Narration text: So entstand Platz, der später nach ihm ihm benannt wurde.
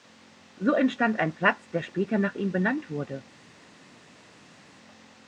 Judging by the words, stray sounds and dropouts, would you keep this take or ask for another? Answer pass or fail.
fail